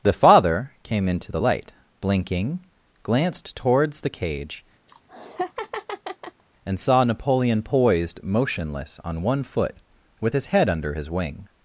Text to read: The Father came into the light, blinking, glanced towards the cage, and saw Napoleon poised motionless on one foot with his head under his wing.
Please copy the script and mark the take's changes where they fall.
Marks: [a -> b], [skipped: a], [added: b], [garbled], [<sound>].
The Father came into the light, blinking, glanced towards the cage, [laugh] and saw Napoleon poised motionless on one foot with his head under his wing.